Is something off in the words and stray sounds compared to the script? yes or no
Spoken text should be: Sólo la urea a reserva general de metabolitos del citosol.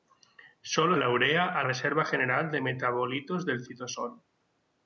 no